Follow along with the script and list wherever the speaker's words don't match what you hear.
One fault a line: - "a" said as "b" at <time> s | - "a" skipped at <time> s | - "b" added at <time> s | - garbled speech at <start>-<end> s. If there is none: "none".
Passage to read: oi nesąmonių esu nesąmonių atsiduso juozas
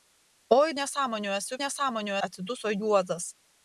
none